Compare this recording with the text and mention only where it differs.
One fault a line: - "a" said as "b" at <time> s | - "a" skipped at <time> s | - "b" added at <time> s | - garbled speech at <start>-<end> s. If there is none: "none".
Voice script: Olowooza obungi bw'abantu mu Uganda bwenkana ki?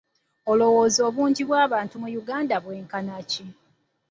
none